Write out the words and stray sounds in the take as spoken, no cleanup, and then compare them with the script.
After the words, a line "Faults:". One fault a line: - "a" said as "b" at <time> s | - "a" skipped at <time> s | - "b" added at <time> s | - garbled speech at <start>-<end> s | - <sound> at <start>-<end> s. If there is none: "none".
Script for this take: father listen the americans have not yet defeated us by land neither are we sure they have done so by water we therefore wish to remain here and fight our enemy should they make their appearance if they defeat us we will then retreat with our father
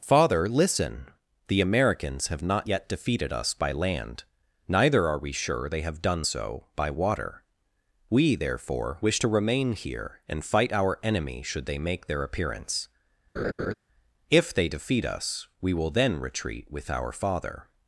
father listen the americans have not yet defeated us by land neither are we sure they have done so by water we therefore wish to remain here and fight our enemy should they make their appearance if they defeat us we will then retreat with our father
Faults:
- laugh at 13.4-13.7 s